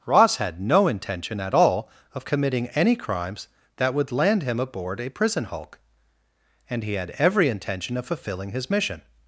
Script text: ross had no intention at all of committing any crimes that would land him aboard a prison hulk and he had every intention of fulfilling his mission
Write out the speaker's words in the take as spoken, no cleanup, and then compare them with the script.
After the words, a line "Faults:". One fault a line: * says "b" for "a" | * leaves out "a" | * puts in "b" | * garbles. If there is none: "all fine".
ross had no intention at all of committing any crimes that would land him aboard a prison hulk and he had every intention of fulfilling his mission
Faults:
all fine